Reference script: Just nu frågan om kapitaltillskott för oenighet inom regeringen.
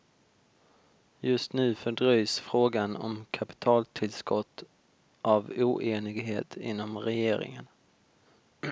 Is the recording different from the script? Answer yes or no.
yes